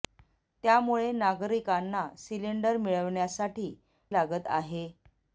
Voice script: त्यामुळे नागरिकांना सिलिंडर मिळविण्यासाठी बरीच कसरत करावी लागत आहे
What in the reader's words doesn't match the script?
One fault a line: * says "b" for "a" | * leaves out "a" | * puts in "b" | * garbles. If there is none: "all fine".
* leaves out "बरीच कसरत करावी"